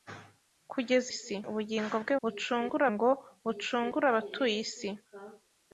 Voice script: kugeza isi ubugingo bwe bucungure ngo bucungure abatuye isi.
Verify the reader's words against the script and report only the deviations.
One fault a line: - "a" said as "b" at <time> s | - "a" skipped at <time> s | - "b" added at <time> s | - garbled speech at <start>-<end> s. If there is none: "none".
none